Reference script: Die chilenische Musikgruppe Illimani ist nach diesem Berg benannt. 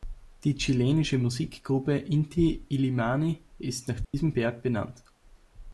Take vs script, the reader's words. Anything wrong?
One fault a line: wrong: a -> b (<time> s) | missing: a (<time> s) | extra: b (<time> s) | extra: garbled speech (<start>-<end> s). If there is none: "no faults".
extra: Inti (1.9 s)